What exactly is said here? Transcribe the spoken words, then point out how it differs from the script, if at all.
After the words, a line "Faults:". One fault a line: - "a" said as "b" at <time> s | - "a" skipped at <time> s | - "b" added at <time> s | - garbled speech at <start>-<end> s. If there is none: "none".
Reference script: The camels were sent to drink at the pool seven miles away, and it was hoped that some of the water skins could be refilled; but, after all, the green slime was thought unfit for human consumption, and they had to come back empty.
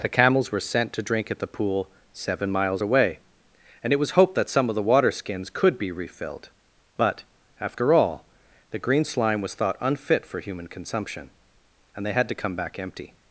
The camels were sent to drink at the pool seven miles away, and it was hoped that some of the water skins could be refilled; but, after all, the green slime was thought unfit for human consumption, and they had to come back empty.
Faults:
none